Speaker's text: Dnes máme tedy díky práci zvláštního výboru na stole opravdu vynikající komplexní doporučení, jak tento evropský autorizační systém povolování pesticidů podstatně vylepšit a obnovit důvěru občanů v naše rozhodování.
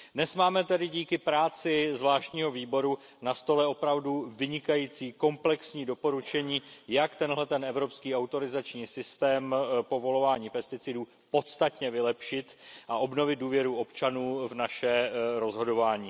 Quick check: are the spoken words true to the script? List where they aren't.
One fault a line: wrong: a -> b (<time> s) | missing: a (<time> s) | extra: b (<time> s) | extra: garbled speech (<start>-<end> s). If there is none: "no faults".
no faults